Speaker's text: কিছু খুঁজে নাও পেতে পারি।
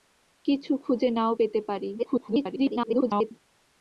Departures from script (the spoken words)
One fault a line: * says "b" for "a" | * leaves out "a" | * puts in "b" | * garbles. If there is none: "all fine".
* garbles